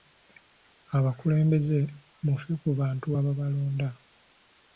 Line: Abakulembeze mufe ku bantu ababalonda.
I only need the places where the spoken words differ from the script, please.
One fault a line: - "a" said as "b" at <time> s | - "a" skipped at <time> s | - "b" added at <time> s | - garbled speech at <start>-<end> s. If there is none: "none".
none